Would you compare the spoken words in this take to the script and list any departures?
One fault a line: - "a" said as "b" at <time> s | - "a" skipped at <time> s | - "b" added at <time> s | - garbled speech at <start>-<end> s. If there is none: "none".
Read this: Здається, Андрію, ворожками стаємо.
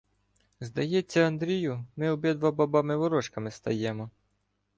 - "ми обидва бабами" added at 1.9 s